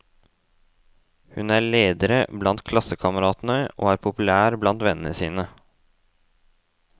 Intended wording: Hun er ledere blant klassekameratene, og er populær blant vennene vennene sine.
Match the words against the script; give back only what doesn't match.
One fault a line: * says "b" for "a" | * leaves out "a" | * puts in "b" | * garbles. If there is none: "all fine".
* leaves out "vennene"